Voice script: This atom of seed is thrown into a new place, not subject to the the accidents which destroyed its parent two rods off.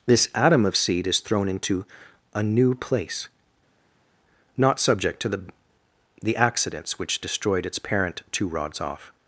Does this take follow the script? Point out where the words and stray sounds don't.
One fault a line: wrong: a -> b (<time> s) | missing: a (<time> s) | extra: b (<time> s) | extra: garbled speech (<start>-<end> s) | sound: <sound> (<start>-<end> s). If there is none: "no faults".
no faults